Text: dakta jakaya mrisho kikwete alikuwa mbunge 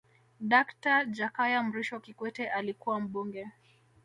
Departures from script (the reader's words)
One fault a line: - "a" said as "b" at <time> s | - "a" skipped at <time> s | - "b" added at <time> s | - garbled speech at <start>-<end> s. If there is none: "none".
none